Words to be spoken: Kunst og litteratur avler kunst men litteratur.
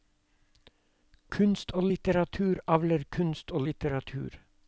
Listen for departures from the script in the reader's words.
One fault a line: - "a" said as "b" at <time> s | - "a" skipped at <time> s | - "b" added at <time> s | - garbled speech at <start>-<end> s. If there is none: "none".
- "men" said as "og" at 3.5 s